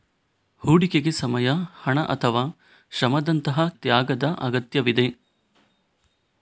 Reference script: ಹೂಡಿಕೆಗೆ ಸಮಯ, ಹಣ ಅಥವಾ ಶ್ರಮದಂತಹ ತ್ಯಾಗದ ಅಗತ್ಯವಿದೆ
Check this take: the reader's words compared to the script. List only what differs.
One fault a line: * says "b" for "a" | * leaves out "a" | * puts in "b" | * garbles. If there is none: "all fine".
all fine